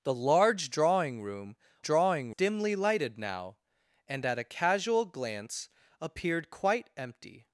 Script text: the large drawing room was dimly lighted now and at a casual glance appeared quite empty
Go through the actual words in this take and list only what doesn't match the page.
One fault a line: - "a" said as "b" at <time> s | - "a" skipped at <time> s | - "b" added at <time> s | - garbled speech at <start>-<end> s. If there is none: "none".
- "was" said as "drawing" at 1.8 s